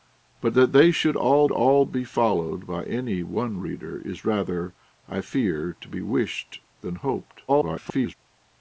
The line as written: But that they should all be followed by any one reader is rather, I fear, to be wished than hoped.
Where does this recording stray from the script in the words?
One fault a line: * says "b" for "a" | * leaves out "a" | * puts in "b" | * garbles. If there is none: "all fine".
* puts in "all"
* garbles